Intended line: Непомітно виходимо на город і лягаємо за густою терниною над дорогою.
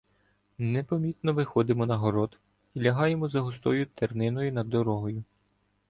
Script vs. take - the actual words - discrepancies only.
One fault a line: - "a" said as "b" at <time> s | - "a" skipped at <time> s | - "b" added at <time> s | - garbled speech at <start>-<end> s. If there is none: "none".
none